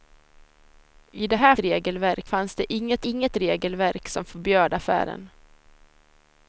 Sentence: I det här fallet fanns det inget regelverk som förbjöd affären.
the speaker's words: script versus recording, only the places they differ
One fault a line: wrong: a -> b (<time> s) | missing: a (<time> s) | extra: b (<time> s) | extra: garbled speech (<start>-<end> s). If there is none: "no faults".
wrong: fallet -> regelverk (1.6 s)
extra: inget (3.1 s)